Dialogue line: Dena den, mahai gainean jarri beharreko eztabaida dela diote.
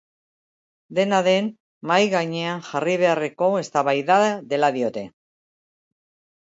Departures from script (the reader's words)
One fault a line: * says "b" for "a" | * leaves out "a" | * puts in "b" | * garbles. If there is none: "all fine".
all fine